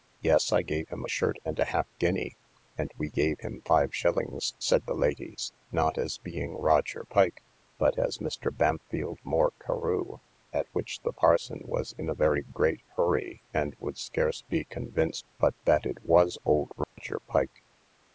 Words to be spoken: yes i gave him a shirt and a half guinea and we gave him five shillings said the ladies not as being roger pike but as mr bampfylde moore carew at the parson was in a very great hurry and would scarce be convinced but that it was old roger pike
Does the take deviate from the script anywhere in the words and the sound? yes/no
yes